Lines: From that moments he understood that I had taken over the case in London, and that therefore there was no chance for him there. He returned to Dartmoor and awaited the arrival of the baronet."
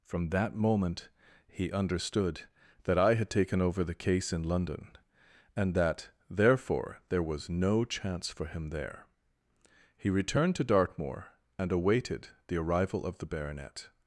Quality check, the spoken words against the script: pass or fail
fail